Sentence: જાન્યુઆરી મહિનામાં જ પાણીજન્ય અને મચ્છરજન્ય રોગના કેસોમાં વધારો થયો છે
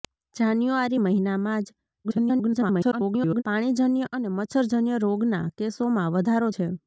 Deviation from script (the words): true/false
true